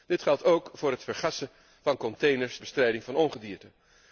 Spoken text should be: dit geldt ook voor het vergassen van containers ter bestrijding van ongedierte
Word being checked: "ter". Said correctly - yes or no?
no